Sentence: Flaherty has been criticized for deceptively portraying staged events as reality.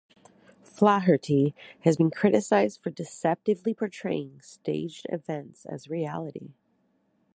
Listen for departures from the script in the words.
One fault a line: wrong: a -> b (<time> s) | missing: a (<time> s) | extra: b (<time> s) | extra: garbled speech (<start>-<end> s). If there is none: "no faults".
no faults